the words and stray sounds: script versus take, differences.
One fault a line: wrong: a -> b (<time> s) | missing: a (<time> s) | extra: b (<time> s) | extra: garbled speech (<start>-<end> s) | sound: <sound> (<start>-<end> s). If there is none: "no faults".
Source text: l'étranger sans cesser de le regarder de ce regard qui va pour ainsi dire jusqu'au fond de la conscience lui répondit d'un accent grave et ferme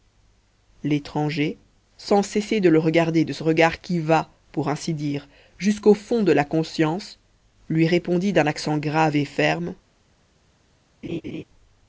sound: laugh (11.0-11.4 s)